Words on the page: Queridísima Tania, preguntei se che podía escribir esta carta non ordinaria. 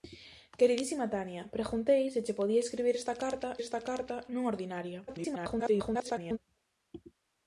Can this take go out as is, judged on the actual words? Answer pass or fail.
fail